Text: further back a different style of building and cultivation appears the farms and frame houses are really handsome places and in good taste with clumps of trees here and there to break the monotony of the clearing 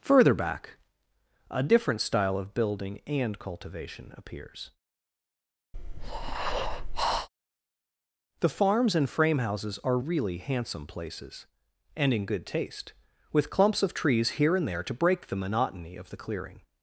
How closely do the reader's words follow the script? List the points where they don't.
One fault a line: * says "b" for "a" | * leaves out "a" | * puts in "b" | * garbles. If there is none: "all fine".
all fine